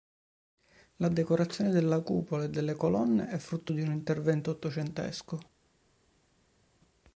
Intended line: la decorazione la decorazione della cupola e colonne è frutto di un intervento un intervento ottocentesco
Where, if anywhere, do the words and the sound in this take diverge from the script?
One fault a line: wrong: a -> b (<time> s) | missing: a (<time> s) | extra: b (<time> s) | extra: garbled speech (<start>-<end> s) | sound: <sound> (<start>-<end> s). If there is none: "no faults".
missing: la decorazione (1.7 s)
extra: delle (2.5 s)
missing: un intervento (4.5 s)